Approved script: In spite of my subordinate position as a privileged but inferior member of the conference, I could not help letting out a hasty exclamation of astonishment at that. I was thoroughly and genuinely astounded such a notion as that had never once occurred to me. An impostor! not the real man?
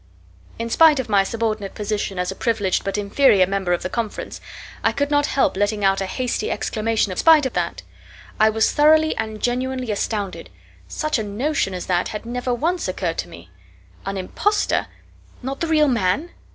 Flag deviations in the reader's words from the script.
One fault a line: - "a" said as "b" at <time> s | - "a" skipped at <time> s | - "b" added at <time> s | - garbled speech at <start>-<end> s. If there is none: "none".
- "astonishment" said as "spite" at 7.2 s